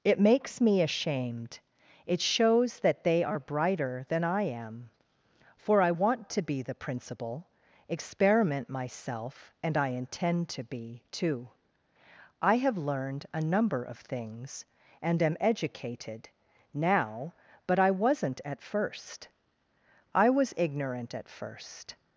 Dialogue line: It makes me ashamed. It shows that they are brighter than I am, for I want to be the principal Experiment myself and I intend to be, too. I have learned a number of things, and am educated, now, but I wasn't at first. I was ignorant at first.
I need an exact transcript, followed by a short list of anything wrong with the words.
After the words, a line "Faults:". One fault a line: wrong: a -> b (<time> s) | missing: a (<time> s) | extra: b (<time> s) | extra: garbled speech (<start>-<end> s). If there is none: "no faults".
It makes me ashamed. It shows that they are brighter than I am, for I want to be the principal Experiment myself and I intend to be, too. I have learned a number of things, and am educated, now, but I wasn't at first. I was ignorant at first.
Faults:
no faults